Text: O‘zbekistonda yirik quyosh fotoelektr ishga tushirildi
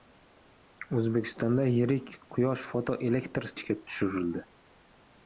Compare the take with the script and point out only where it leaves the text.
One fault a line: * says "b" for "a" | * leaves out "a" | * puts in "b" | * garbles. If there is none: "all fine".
all fine